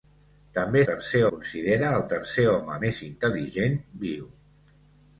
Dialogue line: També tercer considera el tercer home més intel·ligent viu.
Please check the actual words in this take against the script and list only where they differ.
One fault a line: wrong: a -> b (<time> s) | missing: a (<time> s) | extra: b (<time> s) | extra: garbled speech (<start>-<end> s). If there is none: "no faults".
no faults